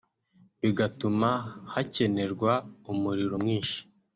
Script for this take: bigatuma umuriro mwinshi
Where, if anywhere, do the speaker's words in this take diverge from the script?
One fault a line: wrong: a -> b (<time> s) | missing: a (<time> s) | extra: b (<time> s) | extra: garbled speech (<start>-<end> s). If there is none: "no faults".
extra: hakenerwa (1.7 s)